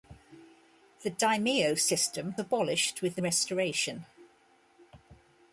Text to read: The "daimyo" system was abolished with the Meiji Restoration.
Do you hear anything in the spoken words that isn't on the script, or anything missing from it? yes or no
yes